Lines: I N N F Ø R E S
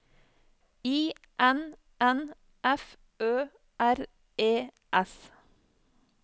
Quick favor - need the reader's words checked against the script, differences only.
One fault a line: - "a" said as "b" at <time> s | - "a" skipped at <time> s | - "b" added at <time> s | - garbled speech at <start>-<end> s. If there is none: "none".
none